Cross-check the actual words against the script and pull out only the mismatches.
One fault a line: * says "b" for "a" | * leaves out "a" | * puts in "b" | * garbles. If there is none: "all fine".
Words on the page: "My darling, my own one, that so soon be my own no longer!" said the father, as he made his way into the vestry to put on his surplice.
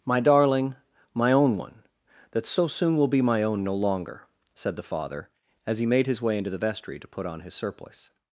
* puts in "will"